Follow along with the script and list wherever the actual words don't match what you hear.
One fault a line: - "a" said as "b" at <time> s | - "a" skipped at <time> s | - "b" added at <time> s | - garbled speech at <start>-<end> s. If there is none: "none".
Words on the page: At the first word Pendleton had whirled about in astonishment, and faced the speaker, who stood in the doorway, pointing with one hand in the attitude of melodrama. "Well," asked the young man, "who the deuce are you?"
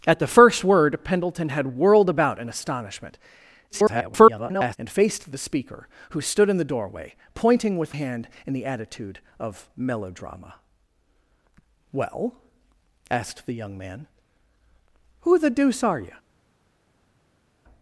- garbled speech at 3.7-4.8 s
- "one" skipped at 7.9 s